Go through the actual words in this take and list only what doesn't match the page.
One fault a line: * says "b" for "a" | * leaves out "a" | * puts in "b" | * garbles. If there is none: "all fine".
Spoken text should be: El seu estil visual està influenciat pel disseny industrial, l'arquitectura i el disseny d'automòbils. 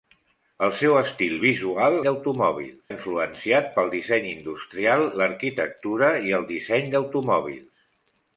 * says "d'automòbils" for "està"